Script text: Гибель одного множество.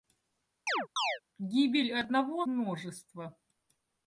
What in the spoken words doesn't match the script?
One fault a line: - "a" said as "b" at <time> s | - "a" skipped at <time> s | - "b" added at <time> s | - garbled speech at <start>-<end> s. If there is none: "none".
none